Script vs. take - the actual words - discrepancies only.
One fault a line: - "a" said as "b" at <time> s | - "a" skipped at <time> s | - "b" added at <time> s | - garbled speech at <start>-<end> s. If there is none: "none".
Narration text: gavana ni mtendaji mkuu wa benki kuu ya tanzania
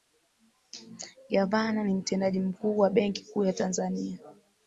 none